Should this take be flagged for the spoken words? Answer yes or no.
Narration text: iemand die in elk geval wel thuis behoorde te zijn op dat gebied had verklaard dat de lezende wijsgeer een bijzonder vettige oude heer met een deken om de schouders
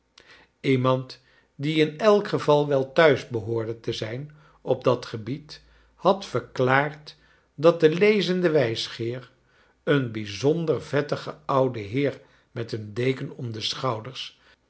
no